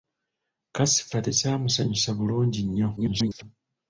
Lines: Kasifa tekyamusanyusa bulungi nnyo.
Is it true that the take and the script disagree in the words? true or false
true